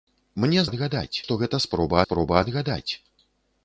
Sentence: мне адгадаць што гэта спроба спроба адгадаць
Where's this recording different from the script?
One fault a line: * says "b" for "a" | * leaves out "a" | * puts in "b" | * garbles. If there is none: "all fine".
all fine